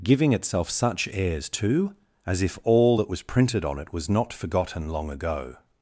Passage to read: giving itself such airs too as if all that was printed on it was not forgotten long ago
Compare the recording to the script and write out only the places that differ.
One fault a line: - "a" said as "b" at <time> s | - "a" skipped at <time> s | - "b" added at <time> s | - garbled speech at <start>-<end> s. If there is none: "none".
none